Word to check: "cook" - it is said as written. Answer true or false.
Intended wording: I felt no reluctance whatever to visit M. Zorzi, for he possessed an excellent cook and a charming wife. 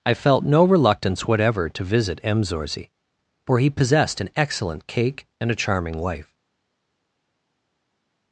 false